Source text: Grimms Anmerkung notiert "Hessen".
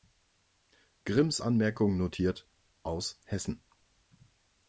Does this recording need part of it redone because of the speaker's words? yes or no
yes